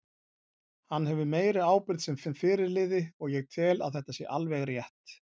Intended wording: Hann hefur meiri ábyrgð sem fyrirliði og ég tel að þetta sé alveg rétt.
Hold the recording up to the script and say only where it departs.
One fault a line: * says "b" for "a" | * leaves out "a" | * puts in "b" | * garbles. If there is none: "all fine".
* puts in "sem"